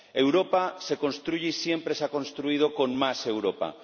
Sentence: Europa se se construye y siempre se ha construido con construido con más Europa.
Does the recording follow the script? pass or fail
fail